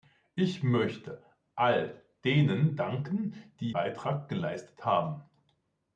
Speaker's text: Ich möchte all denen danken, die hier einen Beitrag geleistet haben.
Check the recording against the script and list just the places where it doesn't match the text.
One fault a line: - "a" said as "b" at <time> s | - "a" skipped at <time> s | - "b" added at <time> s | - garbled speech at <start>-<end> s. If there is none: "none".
- "hier einen" skipped at 3.7 s